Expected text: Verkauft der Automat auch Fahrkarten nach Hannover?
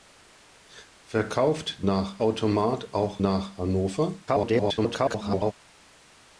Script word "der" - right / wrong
wrong